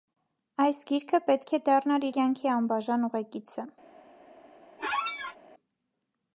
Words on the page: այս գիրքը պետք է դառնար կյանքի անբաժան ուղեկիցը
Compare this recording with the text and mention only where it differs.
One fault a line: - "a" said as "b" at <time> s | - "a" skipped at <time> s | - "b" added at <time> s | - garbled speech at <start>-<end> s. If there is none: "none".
none